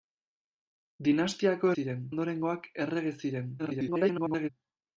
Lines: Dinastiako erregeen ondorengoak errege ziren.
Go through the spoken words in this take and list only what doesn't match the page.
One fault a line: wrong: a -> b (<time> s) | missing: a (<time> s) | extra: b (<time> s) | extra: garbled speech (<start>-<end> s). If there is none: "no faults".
wrong: erregeen -> ziren (1.7 s)
extra: garbled speech (3.6-4.5 s)